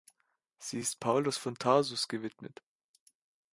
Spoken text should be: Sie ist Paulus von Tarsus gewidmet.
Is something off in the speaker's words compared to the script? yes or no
no